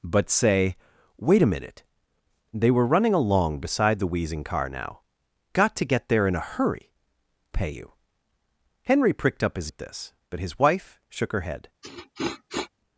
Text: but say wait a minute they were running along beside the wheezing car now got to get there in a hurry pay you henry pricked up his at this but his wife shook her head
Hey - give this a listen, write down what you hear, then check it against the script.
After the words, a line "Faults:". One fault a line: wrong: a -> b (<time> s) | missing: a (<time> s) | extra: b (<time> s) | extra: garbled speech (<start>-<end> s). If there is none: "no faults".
but say wait a minute they were running along beside the wheezing car now got to get there in a hurry pay you henry pricked up his at this but his wife shook her head
Faults:
no faults